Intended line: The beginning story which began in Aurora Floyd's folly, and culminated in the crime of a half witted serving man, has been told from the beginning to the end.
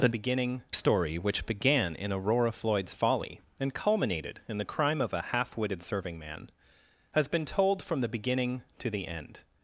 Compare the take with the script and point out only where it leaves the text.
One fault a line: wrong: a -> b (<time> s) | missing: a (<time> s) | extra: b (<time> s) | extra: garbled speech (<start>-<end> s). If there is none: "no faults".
no faults